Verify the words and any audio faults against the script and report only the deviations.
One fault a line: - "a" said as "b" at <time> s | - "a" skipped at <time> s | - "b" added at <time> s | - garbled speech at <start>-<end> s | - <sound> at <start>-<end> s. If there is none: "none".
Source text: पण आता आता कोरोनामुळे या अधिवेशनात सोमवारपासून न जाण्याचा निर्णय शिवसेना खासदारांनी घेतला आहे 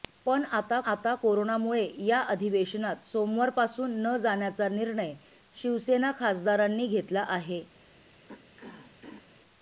- throat clearing at 8.3-9.3 s